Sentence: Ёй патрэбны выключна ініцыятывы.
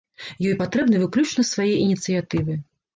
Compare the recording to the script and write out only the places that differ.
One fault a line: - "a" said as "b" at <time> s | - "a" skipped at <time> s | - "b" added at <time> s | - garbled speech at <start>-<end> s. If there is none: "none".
- "свае" added at 1.5 s